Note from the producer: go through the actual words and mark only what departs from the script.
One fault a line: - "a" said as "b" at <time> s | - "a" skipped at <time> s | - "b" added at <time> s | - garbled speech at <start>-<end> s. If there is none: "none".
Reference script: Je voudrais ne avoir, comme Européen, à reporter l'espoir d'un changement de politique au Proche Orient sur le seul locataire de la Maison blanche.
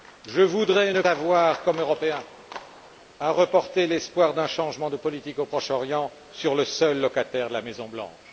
none